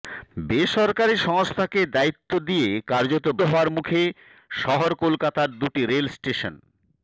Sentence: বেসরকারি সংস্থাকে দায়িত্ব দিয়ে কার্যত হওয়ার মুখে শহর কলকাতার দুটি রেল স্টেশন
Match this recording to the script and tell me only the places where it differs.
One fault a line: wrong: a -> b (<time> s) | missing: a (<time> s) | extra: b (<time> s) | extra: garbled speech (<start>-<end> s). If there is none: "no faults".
no faults